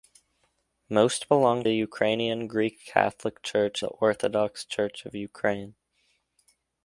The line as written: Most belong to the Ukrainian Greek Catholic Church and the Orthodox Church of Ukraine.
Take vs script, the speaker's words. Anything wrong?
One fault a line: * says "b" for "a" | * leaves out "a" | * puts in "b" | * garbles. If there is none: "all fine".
* leaves out "to"
* leaves out "and"